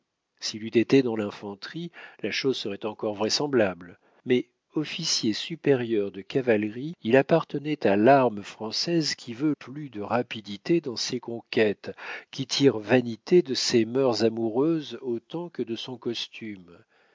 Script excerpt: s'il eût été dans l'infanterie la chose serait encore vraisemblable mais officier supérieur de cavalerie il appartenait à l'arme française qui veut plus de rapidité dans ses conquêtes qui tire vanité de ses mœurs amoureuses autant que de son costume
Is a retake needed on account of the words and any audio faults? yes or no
no